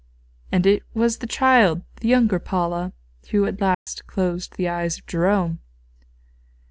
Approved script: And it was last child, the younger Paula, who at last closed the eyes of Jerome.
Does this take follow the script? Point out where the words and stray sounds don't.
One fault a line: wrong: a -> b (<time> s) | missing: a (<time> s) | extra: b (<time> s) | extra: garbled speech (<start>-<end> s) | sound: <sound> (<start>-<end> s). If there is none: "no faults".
wrong: last -> the (1.2 s)
sound: dropout (3.7-3.9 s)